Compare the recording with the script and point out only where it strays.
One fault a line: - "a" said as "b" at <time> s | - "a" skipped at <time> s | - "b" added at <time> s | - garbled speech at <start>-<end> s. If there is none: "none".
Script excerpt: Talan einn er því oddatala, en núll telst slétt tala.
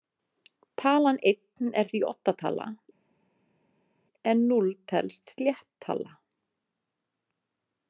none